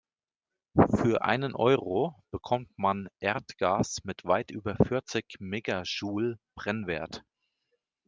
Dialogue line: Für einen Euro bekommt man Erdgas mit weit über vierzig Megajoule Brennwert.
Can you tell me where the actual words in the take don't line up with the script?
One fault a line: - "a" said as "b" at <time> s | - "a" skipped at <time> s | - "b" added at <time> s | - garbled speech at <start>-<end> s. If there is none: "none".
none